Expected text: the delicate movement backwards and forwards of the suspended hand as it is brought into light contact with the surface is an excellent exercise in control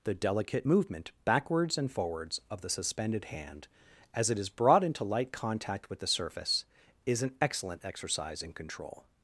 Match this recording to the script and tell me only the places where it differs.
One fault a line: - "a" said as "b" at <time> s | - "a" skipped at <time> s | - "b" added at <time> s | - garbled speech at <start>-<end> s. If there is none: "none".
none